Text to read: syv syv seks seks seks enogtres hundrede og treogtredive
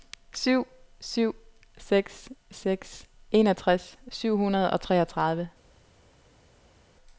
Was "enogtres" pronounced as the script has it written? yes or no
no